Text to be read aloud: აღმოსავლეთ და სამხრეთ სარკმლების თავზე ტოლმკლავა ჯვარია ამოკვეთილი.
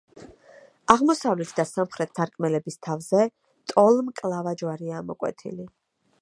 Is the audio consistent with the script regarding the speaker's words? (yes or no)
yes